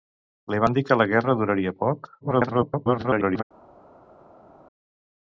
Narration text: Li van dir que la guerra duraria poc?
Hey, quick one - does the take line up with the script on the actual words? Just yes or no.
no